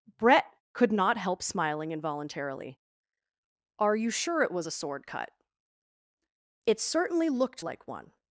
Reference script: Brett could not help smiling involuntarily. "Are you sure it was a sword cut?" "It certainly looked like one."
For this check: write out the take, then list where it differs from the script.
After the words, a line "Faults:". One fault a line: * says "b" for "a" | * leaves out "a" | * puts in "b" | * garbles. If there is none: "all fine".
Brett could not help smiling involuntarily. "Are you sure it was a sword cut?" "It certainly looked like one."
Faults:
all fine